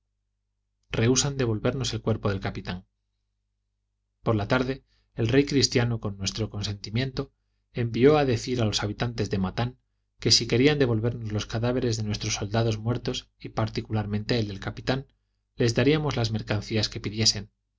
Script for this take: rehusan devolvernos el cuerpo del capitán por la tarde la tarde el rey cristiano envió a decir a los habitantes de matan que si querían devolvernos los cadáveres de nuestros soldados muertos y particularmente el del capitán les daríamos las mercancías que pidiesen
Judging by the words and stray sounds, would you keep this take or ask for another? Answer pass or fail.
fail